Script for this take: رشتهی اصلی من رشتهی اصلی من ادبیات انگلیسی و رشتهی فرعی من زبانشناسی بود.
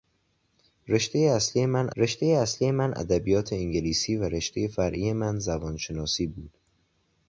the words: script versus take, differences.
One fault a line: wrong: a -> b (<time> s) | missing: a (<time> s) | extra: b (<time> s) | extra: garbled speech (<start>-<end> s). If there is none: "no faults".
no faults